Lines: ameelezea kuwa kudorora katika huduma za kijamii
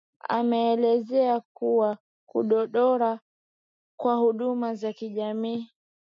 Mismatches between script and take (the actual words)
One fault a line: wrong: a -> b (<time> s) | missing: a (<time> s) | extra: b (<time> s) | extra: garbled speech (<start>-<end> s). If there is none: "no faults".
wrong: katika -> kwa (4.0 s)